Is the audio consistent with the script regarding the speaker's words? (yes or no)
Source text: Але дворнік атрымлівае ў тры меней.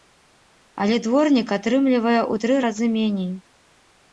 no